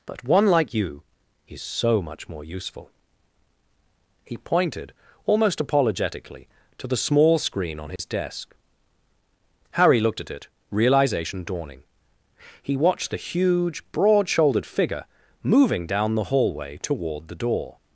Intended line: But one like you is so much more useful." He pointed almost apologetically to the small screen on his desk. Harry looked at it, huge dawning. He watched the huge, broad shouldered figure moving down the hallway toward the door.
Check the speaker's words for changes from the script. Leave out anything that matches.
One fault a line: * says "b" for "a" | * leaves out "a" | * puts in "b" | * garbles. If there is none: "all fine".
* says "realization" for "huge"